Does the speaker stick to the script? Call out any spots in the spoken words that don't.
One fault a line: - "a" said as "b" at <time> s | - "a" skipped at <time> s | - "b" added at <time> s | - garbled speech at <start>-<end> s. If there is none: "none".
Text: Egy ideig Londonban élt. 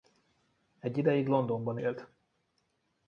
none